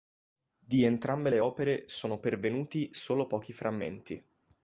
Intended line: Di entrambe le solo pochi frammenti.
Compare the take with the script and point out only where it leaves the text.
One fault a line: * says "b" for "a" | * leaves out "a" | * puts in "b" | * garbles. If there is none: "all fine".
* puts in "opere sono pervenuti"